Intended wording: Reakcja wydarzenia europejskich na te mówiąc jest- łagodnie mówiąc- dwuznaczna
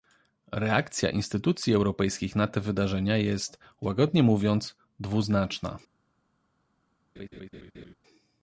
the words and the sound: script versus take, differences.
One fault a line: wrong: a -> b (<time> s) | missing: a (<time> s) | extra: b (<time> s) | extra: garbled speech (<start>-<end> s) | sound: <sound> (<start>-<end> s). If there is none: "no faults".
wrong: wydarzenia -> instytucji (1.1 s)
wrong: mówiąc -> wydarzenia (2.6 s)
sound: laugh (7.2-7.9 s)